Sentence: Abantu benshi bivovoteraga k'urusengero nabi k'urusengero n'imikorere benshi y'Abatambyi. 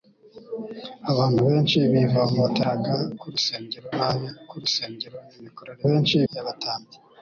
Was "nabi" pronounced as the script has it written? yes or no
yes